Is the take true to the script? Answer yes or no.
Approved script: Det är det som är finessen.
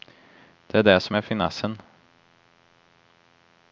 yes